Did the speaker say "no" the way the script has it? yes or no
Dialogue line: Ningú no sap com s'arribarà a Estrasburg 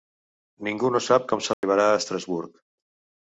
yes